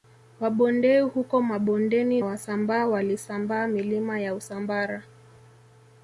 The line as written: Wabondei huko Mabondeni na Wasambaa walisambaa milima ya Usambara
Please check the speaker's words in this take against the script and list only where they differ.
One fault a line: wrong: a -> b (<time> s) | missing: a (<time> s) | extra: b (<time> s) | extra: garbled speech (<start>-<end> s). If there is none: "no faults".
missing: na (2.2 s)